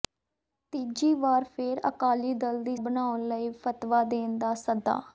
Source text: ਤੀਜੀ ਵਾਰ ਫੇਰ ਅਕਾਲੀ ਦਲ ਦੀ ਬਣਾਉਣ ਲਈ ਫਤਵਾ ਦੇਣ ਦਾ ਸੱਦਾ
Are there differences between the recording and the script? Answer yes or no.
no